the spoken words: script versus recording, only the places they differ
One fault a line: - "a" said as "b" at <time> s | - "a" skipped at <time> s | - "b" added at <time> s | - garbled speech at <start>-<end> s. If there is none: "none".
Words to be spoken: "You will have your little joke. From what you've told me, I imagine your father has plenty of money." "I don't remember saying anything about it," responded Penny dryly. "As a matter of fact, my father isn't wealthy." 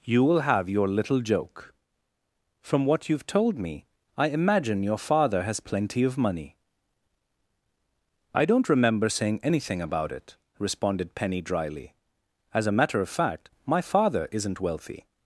none